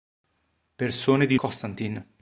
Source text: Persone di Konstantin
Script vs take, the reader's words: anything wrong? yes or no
no